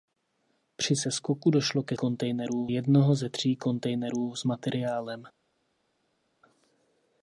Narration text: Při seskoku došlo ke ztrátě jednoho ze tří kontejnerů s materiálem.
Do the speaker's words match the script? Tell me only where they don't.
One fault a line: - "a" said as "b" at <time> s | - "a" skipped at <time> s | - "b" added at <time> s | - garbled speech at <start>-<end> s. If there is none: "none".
- "ztrátě" said as "kontejnerů" at 1.9 s